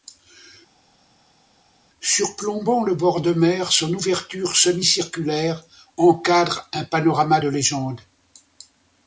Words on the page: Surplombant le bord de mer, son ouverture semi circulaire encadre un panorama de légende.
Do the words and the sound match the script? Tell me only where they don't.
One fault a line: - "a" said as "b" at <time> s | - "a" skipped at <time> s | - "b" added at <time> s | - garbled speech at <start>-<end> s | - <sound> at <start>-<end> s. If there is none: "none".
none